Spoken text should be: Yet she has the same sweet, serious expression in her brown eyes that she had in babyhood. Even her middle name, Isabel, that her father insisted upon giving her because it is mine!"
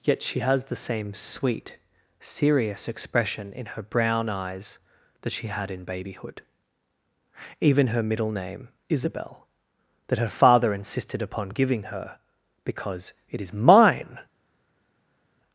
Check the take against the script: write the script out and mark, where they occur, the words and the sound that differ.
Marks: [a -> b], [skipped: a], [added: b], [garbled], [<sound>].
Yet she has the same sweet, serious expression in her brown eyes that she had in babyhood. Even her middle name, Isabel, that her father insisted upon giving her because it is mine!"